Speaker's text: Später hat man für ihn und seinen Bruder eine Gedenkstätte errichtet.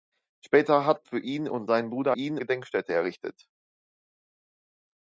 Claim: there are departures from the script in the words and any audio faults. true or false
true